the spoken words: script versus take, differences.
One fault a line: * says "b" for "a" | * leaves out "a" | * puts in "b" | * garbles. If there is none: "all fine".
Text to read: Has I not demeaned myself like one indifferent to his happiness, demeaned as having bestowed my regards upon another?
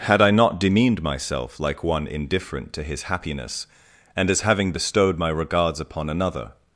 * says "Had" for "Has"
* says "and" for "demeaned"